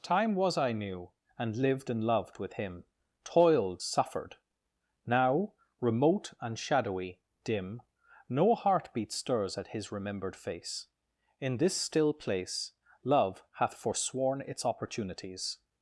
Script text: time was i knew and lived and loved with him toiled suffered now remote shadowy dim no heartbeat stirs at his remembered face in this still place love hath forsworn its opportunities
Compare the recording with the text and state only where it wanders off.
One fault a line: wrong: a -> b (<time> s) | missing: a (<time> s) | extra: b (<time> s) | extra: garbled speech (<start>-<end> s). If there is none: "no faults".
extra: and (6.4 s)